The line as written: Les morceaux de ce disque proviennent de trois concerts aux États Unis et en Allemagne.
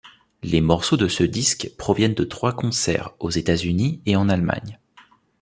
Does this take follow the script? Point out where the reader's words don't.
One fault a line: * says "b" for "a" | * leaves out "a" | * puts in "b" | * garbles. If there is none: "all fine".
all fine